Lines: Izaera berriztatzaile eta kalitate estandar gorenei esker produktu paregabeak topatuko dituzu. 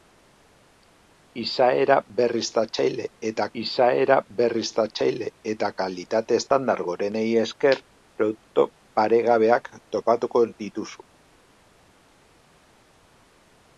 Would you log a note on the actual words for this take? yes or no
yes